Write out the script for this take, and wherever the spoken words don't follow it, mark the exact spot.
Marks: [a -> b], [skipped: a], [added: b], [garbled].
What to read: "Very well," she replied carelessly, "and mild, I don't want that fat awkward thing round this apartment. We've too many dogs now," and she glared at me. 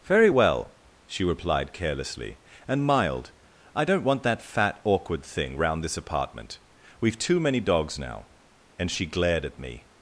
"Very well," she replied carelessly, "and mild, I don't want that fat awkward thing round this apartment. We've too many dogs now," and she glared at me.